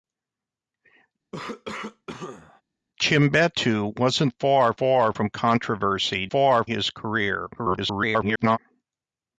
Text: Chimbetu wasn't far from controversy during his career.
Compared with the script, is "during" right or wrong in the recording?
wrong